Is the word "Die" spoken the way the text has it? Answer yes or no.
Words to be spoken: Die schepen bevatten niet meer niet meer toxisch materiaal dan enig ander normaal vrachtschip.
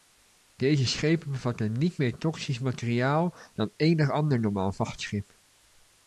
no